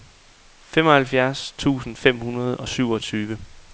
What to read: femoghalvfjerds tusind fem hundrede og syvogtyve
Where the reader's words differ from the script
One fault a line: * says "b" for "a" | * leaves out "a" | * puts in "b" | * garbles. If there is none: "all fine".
all fine